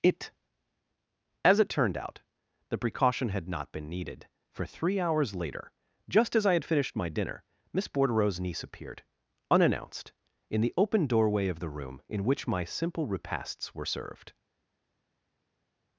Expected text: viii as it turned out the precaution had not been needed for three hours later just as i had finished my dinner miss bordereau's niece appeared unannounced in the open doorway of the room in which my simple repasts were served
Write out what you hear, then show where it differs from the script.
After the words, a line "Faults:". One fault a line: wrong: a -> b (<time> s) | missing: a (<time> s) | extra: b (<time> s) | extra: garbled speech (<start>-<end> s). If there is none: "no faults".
it as it turned out the precaution had not been needed for three hours later just as i had finished my dinner miss bordereau's niece appeared unannounced in the open doorway of the room in which my simple repasts were served
Faults:
wrong: viii -> it (0.0 s)